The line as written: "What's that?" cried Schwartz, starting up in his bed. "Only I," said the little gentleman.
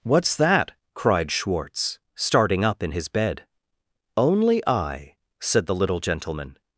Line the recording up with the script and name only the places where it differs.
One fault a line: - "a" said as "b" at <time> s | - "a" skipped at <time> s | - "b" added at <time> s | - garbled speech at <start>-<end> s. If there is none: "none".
none